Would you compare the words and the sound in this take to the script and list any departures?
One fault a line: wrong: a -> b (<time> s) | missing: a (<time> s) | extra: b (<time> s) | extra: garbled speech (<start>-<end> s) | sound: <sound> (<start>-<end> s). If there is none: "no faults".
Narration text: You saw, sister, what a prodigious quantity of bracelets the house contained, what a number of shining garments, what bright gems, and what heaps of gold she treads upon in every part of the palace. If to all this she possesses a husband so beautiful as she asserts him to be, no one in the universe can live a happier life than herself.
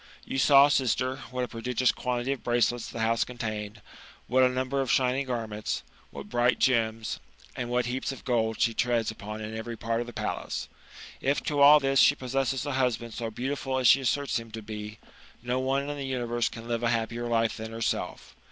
no faults